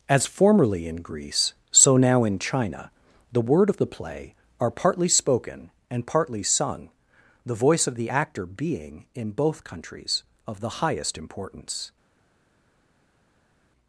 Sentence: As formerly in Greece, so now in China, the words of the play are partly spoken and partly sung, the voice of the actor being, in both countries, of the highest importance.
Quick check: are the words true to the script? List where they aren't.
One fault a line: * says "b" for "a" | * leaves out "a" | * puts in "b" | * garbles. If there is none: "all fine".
* says "word" for "words"